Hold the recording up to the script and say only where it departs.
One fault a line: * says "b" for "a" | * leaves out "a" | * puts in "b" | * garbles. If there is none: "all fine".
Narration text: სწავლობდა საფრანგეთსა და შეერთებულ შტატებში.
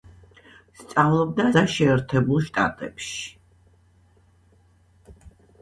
* leaves out "საფრანგეთსა"